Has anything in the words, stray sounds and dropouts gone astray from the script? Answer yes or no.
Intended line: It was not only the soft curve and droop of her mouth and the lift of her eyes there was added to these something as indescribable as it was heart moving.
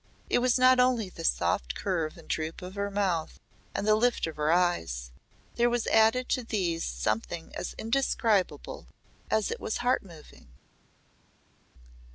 no